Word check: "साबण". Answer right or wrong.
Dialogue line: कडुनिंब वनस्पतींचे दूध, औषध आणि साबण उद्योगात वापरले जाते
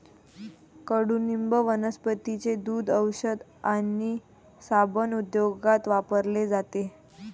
right